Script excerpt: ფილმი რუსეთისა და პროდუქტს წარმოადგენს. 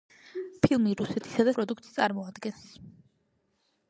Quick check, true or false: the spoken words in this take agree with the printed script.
true